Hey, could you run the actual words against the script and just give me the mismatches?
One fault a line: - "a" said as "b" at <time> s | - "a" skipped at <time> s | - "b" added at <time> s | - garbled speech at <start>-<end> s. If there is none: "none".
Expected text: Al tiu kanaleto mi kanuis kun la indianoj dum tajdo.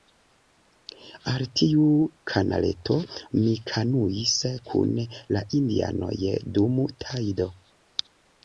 none